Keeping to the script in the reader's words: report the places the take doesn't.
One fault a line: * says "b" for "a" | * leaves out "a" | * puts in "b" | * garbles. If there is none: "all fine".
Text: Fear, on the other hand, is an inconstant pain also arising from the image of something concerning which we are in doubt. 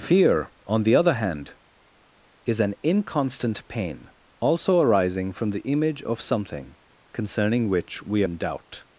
* leaves out "are"